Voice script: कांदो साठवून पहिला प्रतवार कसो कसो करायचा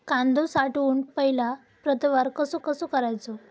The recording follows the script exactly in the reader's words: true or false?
true